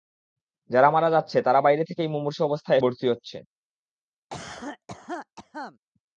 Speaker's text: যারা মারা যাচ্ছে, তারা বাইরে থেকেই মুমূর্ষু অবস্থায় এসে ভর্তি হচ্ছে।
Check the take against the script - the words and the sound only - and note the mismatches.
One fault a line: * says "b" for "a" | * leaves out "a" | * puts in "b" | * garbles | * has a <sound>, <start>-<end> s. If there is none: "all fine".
* leaves out "এসে"
* has a cough, 4.3-5.8 s